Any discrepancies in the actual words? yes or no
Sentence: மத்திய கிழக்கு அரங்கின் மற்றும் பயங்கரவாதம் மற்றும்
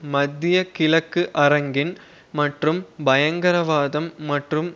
no